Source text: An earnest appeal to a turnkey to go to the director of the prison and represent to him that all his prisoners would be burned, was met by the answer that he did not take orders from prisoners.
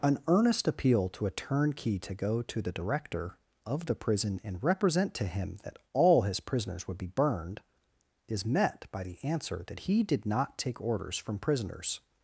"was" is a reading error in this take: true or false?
true